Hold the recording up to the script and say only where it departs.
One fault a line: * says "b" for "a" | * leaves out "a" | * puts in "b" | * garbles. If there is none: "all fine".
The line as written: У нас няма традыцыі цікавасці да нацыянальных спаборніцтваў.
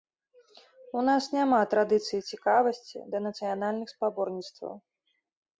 all fine